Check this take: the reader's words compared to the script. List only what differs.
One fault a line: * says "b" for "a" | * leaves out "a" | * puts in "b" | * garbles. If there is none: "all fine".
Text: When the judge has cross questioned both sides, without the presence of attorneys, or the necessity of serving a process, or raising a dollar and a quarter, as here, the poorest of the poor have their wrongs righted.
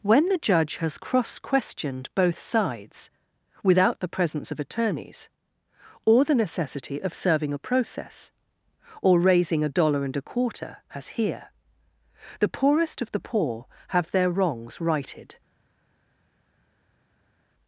all fine